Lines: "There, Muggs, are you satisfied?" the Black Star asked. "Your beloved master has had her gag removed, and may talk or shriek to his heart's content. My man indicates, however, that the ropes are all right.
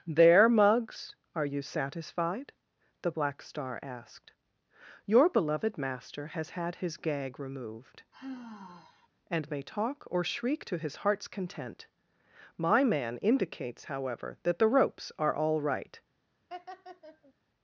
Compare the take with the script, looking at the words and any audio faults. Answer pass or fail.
fail